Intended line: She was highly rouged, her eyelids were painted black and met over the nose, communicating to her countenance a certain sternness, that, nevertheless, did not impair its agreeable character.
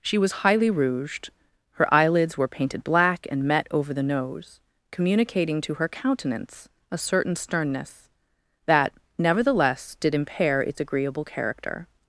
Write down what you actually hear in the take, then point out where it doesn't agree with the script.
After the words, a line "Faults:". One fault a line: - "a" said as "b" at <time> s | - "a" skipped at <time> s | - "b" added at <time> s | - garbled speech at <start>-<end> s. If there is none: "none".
She was highly rouged, her eyelids were painted black and met over the nose, communicating to her countenance a certain sternness, that, nevertheless, did impair its agreeable character.
Faults:
- "not" skipped at 10.1 s